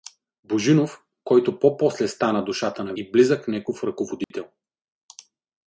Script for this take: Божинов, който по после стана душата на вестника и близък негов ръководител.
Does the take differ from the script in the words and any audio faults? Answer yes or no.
yes